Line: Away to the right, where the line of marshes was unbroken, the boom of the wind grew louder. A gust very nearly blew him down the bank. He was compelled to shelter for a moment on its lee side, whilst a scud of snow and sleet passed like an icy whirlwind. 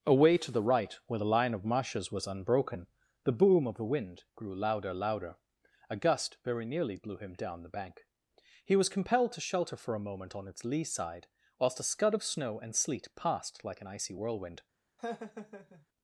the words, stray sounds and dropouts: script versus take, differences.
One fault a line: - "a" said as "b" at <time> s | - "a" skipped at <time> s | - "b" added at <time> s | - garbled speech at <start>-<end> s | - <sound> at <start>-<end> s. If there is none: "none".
- "louder" added at 5.0 s
- laugh at 15.0-15.9 s